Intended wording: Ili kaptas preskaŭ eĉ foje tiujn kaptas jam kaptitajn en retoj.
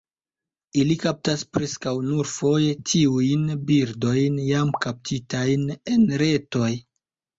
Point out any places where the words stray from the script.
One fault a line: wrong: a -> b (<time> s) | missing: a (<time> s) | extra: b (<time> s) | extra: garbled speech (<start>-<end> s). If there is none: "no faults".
wrong: eĉ -> nur (2.1 s)
wrong: kaptas -> birdojn (3.7 s)